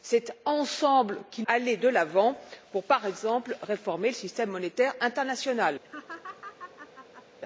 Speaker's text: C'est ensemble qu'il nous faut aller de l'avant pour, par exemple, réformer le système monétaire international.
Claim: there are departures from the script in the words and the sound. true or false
true